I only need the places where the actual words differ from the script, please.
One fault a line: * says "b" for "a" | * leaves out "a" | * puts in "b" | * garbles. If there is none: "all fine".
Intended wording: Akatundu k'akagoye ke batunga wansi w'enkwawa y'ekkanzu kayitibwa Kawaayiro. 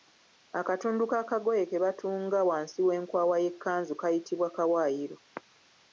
all fine